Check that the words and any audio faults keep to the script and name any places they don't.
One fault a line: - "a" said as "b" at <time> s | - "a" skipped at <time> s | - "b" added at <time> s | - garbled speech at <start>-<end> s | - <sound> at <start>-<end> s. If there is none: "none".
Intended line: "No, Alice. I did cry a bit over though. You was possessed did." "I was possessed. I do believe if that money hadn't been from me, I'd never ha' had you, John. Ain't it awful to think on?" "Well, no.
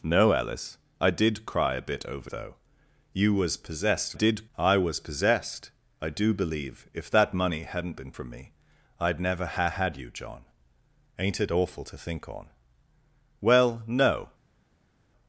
none